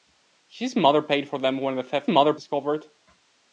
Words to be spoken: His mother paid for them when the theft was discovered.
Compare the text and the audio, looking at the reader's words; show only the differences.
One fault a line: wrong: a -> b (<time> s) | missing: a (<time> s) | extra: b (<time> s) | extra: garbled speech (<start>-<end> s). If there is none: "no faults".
wrong: was -> mother (2.1 s)